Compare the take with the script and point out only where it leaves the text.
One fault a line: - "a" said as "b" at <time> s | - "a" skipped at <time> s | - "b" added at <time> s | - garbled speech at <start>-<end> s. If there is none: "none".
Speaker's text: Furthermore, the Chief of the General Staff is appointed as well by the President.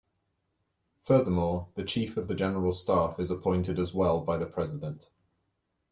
none